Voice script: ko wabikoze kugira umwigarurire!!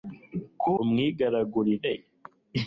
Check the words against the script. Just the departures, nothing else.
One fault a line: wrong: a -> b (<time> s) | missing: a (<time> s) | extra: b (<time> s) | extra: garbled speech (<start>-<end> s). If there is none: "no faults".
missing: wabikoze kugira (0.7 s)